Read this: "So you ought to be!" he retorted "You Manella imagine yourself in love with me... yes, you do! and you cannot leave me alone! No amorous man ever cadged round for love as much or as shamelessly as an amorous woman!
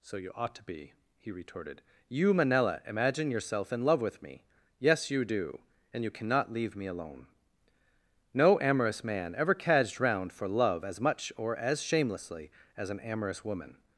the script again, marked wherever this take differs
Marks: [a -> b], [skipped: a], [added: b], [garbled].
"So you ought to be!" he retorted "You Manella imagine yourself in love with me... yes, you do! and you cannot leave me alone! No amorous man ever cadged round for love as much or as shamelessly as an amorous woman!